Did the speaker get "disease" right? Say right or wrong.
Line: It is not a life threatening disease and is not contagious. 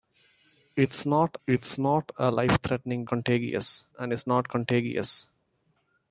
wrong